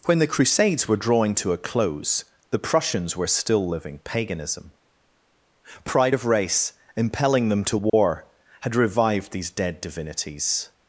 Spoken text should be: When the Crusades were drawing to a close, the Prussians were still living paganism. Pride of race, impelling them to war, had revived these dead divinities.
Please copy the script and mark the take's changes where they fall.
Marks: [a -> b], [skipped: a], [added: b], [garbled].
When the Crusades were drawing to a close, the Prussians were still living paganism. Pride of race, impelling them to war, had revived these dead divinities.